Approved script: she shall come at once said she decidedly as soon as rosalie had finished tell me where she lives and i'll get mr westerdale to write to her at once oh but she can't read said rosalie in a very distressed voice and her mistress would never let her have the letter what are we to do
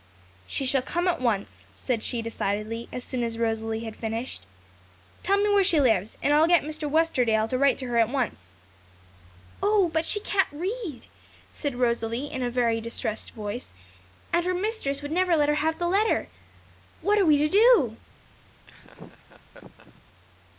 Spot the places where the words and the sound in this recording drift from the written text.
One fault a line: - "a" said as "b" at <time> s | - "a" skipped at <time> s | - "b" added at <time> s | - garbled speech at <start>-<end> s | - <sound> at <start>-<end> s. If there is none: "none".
- laugh at 18.7-20.0 s